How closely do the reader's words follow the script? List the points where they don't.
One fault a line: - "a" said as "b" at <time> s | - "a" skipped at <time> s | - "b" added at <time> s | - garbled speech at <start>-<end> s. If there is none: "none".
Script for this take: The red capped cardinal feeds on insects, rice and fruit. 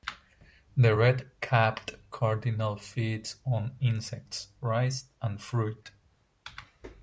none